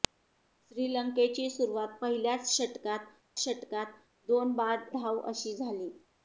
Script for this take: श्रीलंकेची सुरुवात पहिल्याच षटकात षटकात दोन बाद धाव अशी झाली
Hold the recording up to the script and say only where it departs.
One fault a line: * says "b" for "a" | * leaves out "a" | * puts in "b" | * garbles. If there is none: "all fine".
all fine